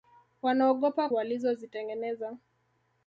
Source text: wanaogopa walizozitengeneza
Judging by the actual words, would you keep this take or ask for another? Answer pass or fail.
pass